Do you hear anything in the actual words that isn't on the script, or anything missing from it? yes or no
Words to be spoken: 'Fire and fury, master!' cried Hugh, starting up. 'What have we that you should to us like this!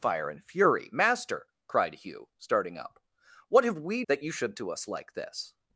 no